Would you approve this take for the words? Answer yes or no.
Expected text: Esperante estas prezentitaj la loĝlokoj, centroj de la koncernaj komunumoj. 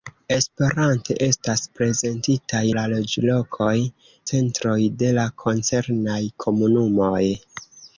yes